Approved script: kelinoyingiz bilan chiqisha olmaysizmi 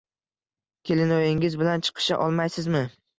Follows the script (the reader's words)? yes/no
yes